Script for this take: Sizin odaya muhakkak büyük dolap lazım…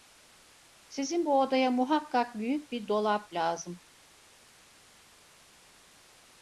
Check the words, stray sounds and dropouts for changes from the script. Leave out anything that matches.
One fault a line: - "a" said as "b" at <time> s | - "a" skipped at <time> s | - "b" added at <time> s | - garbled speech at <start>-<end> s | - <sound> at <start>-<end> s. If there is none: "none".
- "bu" added at 1.2 s
- "bir" added at 2.7 s